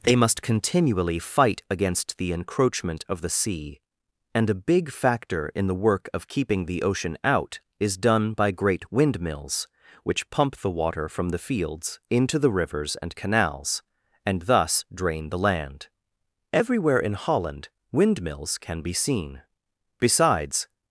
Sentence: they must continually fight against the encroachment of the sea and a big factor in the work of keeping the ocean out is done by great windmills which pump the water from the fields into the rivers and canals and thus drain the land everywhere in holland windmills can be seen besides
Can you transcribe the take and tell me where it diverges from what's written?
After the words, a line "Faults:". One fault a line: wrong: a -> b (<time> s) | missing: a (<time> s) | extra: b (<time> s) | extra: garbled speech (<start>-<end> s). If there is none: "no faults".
they must continually fight against the encroachment of the sea and a big factor in the work of keeping the ocean out is done by great windmills which pump the water from the fields into the rivers and canals and thus drain the land everywhere in holland windmills can be seen besides
Faults:
no faults